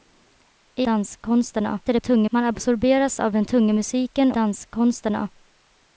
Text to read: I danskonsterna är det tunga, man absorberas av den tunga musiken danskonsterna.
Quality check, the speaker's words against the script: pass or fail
pass